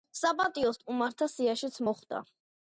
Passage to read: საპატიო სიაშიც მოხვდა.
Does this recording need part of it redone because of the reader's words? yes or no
yes